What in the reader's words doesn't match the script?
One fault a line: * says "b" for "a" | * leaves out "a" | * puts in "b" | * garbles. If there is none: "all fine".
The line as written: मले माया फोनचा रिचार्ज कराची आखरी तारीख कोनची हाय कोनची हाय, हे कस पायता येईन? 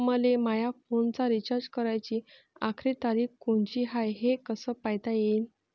* leaves out "कोनची हाय"